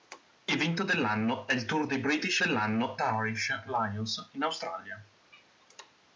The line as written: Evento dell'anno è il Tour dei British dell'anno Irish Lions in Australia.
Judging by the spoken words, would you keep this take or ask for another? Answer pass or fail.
pass